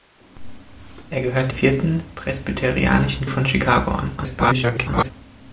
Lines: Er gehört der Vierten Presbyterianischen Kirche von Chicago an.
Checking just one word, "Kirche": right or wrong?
wrong